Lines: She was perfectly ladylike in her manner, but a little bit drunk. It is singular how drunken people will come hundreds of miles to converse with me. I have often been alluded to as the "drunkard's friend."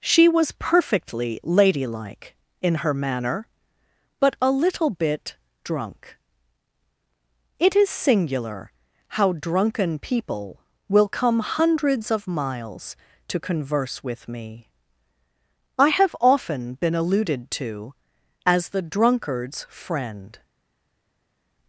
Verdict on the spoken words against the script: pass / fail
pass